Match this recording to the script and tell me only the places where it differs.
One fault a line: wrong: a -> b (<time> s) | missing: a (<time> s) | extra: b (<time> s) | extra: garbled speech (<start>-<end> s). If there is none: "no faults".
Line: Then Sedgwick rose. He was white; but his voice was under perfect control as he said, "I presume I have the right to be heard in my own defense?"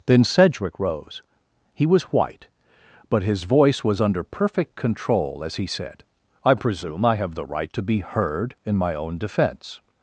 no faults